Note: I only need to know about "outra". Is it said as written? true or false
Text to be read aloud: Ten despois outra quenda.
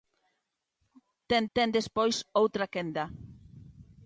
true